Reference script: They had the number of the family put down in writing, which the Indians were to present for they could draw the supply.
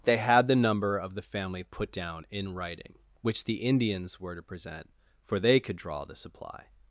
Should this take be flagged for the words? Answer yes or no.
no